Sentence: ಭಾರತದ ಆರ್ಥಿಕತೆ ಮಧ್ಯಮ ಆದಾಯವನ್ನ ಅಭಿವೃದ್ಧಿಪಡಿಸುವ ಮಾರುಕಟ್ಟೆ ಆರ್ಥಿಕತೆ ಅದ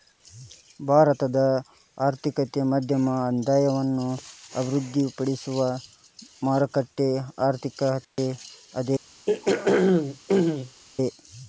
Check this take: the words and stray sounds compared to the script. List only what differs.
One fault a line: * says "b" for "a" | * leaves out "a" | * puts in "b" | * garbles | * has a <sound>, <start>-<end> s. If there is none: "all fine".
* has a dropout, 8.0-8.2 s
* has a throat clearing, 9.3-10.8 s